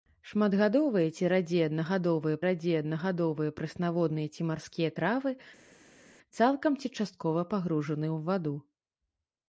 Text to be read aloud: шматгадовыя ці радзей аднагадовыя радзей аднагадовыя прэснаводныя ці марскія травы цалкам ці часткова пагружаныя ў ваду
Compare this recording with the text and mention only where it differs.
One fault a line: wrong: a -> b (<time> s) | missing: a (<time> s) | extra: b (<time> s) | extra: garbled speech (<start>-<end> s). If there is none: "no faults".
no faults